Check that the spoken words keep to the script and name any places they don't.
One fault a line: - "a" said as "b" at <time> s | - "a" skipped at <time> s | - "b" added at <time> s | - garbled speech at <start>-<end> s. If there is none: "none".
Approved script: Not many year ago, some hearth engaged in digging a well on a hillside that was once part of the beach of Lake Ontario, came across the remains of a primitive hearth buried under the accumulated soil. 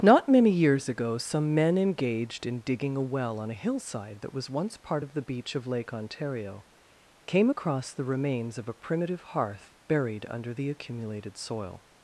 - "year" said as "years" at 0.5 s
- "hearth" said as "men" at 1.5 s